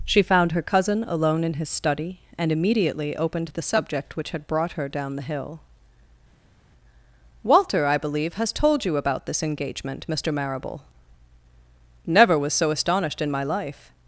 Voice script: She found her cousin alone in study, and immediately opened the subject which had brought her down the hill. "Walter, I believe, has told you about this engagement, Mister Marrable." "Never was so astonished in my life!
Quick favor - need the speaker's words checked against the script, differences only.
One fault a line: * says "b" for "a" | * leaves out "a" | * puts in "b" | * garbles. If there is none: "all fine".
* puts in "his"